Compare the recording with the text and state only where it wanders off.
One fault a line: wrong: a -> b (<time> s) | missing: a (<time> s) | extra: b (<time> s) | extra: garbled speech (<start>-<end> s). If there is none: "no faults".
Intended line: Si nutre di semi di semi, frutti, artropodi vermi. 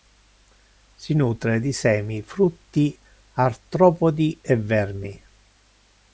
missing: di semi (2.2 s)
extra: e (4.4 s)